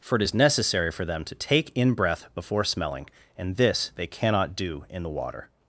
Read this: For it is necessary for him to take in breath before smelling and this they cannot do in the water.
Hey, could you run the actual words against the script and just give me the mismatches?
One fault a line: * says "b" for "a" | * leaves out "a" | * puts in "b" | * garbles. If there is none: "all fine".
* says "them" for "him"